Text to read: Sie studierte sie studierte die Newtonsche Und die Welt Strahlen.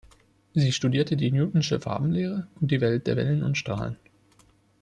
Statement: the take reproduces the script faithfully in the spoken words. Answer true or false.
false